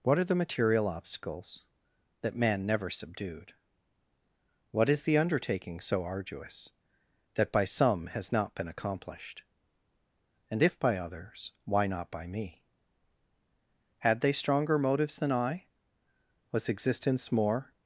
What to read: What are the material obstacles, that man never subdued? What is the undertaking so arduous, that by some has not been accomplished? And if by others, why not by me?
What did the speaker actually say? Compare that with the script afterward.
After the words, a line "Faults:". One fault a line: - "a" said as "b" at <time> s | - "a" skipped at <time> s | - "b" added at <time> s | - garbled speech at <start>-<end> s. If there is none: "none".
What are the material obstacles, that man never subdued? What is the undertaking so arduous, that by some has not been accomplished? And if by others, why not by me? Had they stronger motives than I? Was existence more
Faults:
- "Had they stronger motives than I Was existence more" added at 14.0 s